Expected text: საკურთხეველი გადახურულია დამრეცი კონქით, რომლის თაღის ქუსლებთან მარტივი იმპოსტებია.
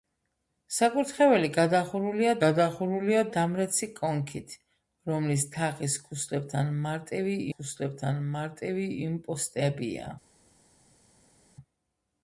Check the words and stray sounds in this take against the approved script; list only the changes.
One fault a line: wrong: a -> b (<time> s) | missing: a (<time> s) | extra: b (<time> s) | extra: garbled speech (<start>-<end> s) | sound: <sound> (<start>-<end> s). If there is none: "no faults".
extra: გადახურულია (2.4 s)
extra: ქუსლებთან მარტივი (7.6 s)